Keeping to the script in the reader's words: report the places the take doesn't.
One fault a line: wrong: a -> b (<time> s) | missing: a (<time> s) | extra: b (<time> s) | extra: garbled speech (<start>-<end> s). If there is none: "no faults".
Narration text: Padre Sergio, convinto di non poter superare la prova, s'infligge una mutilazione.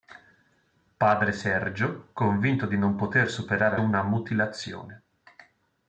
missing: la prova s'infligge (3.8 s)